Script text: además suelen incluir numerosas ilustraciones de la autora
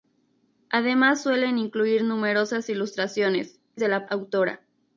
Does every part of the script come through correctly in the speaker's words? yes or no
yes